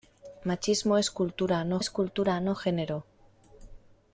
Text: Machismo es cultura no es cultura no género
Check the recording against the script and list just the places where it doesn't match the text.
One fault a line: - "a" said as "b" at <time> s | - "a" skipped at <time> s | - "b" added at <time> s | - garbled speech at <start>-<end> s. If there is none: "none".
none